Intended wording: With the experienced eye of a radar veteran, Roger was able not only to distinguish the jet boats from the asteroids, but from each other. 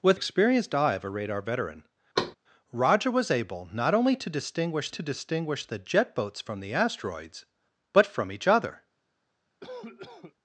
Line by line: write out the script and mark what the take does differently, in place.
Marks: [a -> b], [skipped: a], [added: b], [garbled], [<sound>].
With [skipped: the] experienced eye of a radar veteran, [thud] Roger was able not only to distinguish [added: to distinguish] the jet boats from the asteroids, but from each other. [cough]